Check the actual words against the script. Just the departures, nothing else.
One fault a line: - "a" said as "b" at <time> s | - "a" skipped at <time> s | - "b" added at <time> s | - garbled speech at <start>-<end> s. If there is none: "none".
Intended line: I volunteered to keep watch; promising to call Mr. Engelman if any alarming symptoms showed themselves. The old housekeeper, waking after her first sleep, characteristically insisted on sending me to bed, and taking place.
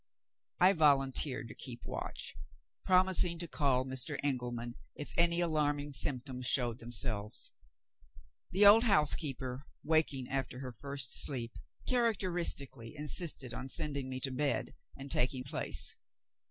none